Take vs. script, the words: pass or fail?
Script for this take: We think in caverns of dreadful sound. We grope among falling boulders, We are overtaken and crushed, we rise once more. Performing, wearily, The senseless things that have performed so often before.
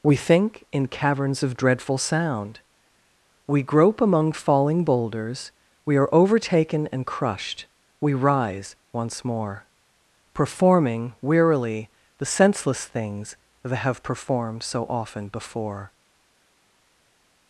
pass